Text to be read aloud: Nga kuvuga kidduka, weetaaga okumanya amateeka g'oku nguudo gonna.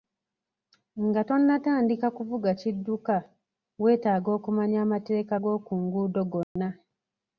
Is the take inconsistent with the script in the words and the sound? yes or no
yes